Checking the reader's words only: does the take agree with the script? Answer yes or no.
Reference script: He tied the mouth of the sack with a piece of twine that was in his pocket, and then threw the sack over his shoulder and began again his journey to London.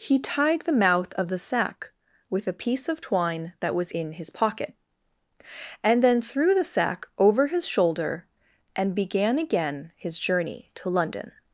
yes